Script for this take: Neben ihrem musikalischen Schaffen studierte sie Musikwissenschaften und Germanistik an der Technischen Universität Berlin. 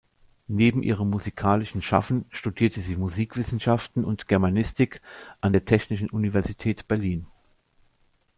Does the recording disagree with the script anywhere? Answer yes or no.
no